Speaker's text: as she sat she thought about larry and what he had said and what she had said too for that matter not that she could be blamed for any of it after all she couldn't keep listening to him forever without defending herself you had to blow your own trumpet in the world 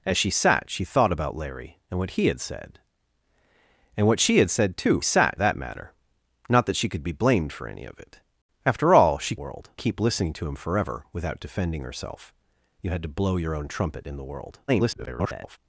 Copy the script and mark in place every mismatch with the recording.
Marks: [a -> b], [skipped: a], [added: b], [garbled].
as she sat she thought about larry and what he had said and what she had said too [for -> sat] that matter not that she could be blamed for any of it after all she [couldn't -> world] keep listening to him forever without defending herself you had to blow your own trumpet in the world [garbled]